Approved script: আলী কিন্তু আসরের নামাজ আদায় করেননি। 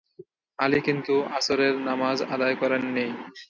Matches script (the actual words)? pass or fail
pass